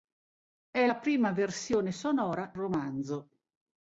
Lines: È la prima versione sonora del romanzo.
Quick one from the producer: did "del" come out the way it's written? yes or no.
no